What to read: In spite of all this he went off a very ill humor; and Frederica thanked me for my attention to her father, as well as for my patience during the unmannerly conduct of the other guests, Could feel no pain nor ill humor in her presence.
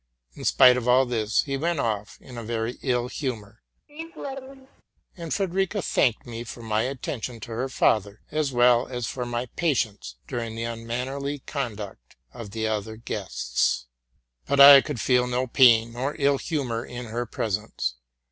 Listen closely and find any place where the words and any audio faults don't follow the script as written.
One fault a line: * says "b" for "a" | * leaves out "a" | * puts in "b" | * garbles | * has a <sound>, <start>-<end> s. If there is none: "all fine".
* puts in "in"
* has a laugh, 3.9-4.8 s
* puts in "But I"